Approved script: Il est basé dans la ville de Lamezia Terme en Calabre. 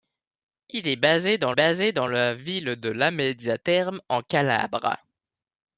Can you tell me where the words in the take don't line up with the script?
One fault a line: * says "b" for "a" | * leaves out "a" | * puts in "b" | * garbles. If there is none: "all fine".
* puts in "basé dans"